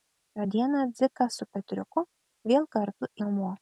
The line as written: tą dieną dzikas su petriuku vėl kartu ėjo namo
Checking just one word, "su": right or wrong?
right